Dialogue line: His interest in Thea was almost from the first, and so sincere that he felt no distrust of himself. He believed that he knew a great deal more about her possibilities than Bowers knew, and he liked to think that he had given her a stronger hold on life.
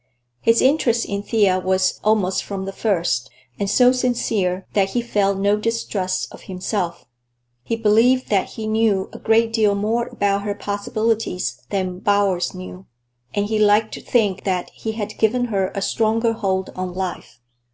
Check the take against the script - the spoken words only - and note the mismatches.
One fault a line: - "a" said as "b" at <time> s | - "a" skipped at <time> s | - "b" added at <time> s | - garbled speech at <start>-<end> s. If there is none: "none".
none